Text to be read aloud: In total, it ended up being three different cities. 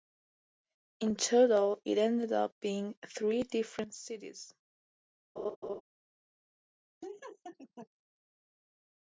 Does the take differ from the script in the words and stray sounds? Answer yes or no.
yes